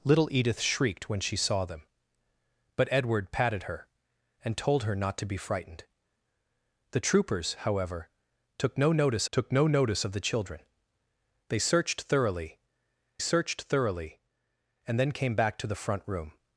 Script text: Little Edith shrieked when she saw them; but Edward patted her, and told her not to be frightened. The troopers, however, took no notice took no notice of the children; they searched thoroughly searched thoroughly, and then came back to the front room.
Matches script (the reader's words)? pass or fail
pass